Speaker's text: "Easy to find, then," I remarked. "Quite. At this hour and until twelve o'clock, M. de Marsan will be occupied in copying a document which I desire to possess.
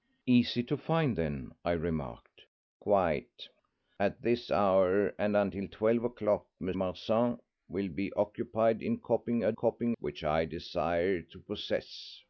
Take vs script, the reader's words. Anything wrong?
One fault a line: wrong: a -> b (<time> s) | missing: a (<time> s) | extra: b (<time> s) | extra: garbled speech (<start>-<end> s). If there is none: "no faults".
missing: de (6.7 s)
wrong: document -> copying (9.5 s)